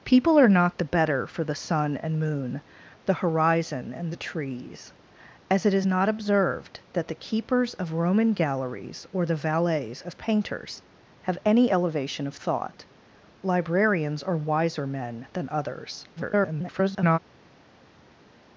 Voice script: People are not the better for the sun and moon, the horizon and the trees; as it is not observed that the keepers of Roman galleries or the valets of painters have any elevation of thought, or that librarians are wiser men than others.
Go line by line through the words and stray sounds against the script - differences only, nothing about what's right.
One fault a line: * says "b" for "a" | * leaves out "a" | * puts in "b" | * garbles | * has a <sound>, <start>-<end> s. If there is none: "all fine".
* leaves out "or that"
* garbles